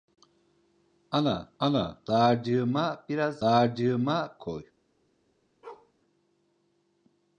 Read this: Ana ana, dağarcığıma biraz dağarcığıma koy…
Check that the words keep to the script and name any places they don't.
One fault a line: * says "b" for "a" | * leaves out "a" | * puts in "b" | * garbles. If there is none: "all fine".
all fine